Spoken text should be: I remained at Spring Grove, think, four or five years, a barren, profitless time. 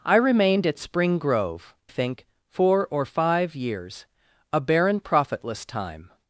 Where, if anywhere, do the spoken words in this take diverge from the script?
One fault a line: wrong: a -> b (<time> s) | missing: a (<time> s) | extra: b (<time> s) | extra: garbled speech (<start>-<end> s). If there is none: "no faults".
no faults